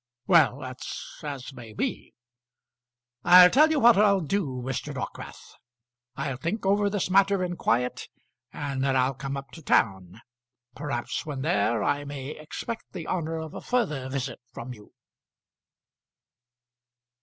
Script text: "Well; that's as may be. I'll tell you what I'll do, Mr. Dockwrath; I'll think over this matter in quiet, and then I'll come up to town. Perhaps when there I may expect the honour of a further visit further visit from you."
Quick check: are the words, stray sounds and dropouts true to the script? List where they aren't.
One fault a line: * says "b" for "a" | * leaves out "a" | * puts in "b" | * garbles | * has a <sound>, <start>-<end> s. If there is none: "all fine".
* leaves out "further visit"